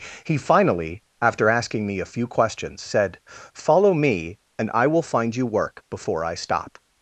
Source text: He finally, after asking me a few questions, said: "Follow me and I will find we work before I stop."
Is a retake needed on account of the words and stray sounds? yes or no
yes